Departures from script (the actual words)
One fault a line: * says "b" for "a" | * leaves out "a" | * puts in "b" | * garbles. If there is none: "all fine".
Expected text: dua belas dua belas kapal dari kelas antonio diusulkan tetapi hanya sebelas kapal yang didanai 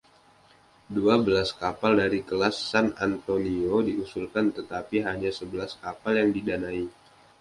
* leaves out "dua belas"
* puts in "san"